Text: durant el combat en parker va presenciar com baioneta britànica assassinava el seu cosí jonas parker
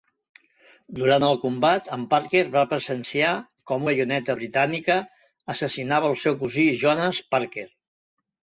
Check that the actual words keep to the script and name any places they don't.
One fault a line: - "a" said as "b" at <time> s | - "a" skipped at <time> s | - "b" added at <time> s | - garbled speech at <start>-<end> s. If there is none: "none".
none